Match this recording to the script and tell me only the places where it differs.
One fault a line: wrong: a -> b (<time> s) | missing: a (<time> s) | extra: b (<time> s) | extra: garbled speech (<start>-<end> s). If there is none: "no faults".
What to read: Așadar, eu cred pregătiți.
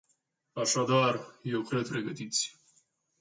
no faults